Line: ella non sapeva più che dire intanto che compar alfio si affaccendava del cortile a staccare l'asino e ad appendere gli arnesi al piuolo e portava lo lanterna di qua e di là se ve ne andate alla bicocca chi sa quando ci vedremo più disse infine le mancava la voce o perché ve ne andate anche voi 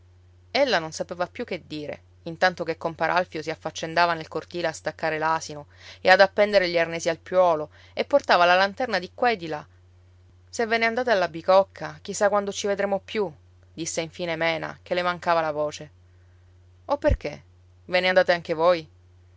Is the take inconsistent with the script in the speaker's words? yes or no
yes